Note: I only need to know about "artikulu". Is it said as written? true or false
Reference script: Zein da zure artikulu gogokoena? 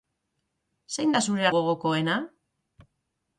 false